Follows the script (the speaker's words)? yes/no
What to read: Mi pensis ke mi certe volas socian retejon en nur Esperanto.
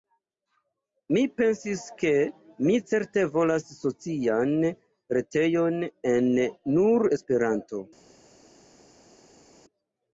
yes